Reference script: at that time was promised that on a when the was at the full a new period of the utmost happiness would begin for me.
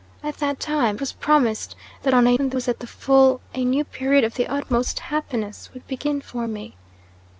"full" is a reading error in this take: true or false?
false